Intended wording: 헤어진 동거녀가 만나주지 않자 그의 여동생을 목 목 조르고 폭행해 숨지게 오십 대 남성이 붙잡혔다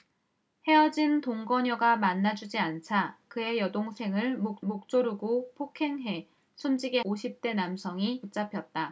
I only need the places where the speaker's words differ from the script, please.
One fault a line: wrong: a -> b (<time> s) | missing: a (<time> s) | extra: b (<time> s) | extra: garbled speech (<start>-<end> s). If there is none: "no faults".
no faults